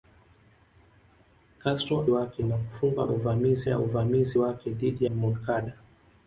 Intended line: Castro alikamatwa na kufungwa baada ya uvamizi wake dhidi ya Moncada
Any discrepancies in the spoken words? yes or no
yes